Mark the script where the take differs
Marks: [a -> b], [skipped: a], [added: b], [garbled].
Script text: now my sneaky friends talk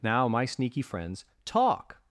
now my sneaky friends talk